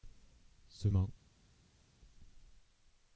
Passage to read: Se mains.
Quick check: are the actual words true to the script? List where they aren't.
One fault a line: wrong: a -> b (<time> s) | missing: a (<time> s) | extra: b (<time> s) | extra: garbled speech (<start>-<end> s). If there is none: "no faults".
no faults